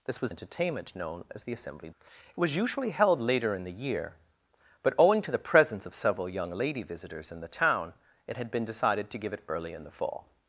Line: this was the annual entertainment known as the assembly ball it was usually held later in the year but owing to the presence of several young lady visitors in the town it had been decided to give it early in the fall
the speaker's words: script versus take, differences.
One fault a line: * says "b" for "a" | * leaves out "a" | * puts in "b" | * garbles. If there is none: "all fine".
* leaves out "the annual"
* leaves out "ball"